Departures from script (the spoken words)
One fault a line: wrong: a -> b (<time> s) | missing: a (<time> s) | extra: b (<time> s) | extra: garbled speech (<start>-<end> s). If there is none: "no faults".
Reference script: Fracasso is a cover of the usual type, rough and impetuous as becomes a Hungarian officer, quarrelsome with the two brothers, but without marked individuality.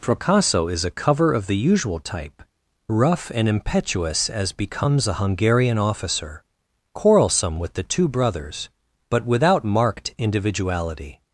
no faults